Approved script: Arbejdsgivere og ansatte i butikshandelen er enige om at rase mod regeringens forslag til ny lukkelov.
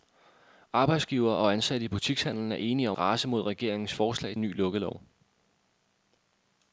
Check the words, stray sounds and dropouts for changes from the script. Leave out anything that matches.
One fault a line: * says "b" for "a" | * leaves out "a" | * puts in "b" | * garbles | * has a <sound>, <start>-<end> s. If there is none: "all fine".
* leaves out "at"
* leaves out "til"